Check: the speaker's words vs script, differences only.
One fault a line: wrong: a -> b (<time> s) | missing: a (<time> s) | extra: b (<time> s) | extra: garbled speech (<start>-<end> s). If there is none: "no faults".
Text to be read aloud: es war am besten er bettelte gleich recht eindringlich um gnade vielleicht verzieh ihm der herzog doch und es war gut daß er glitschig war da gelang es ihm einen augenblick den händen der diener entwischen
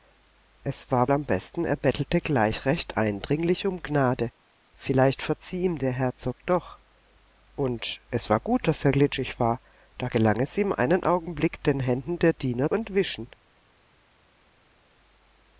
no faults